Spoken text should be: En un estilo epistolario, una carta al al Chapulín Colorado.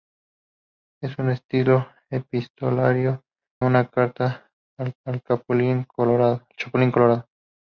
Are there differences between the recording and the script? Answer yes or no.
no